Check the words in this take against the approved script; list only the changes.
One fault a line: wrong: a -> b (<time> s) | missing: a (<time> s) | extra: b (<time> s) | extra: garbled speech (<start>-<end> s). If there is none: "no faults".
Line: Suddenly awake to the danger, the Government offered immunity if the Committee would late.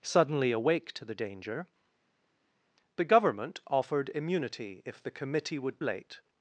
no faults